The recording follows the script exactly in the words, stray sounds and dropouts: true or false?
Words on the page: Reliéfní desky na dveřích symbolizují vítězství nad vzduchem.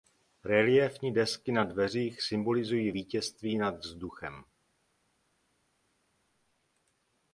true